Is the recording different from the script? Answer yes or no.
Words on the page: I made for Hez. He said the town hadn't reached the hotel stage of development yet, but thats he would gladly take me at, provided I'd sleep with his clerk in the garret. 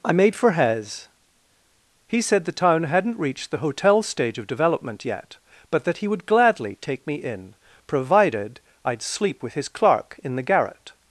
yes